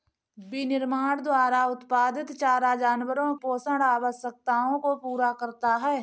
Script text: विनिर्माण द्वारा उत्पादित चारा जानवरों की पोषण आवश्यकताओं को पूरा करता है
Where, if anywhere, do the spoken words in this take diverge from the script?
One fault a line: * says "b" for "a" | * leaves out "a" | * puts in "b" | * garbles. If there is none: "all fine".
* leaves out "की"